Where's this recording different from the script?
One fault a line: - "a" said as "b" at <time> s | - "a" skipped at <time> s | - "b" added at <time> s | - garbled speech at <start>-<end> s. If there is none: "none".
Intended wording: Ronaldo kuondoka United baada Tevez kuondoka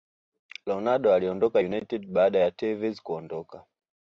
- "kuondoka" said as "aliondoka" at 1.1 s
- "ya" added at 2.4 s